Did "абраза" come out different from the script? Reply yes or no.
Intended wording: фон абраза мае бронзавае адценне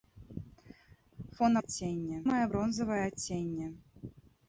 yes